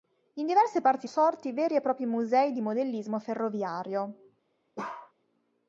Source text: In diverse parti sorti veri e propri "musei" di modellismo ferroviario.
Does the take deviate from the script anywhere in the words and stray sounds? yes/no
yes